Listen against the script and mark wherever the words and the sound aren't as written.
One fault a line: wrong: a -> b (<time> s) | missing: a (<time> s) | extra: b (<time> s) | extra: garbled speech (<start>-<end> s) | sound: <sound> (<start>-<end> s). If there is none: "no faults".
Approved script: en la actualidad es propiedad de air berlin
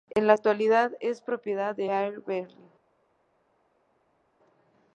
no faults